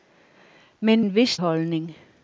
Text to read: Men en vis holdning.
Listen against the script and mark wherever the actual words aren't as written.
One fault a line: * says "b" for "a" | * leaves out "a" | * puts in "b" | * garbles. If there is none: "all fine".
all fine